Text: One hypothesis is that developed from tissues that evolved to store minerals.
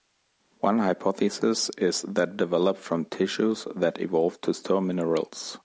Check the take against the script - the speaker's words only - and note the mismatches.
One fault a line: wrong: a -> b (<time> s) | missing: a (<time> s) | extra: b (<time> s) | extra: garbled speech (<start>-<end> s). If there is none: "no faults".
no faults